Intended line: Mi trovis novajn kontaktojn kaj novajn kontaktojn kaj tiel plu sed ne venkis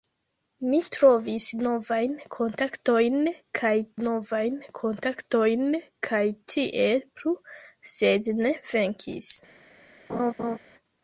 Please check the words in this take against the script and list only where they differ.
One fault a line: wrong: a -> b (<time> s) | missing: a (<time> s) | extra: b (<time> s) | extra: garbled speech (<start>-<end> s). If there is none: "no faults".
no faults